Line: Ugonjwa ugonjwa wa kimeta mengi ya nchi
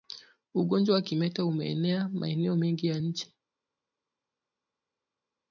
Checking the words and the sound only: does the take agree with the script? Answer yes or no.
no